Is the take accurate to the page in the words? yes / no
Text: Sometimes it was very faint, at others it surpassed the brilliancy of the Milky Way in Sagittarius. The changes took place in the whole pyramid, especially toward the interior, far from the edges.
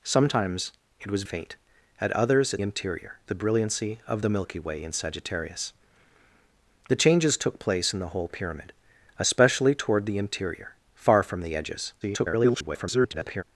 no